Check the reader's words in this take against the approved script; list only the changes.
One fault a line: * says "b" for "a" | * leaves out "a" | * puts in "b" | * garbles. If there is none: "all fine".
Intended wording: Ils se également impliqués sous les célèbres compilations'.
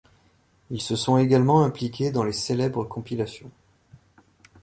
* puts in "sont"
* says "dans" for "sous"